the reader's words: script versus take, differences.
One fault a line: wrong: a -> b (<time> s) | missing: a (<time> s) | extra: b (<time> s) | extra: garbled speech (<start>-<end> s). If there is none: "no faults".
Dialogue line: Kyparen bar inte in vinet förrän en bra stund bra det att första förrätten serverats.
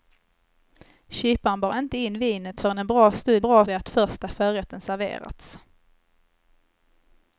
no faults